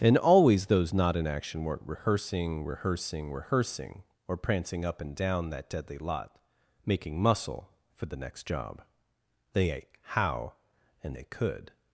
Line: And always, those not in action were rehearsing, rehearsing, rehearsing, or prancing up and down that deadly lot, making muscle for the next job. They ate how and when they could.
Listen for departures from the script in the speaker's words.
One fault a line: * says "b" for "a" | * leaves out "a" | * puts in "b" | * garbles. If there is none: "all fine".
* says "weren't" for "were"
* leaves out "when"